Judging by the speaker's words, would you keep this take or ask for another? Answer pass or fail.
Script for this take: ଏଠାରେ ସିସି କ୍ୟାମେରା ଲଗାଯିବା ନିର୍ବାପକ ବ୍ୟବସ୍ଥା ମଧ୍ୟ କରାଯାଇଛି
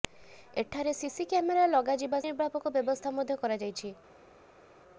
pass